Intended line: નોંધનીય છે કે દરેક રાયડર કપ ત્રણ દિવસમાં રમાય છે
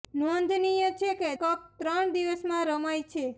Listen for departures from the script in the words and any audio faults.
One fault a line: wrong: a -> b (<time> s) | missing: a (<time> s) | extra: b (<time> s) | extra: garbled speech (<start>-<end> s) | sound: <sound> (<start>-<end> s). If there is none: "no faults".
missing: દરેક રાયડર (1.3 s)